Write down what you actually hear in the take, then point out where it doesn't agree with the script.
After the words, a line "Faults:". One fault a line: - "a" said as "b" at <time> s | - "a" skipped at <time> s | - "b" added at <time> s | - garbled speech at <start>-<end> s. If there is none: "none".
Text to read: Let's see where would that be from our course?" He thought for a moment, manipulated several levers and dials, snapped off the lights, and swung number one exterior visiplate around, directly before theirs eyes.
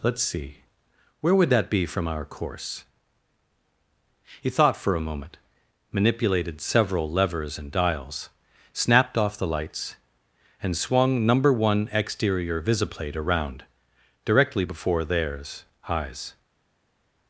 Let's see where would that be from our course?" He thought for a moment, manipulated several levers and dials, snapped off the lights, and swung number one exterior visiplate around, directly before theirs eyes.
Faults:
none